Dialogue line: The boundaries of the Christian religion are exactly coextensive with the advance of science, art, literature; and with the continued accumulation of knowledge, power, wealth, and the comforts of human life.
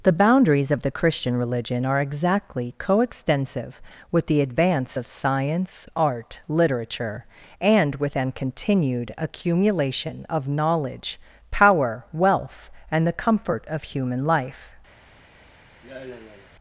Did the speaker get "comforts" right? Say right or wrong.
wrong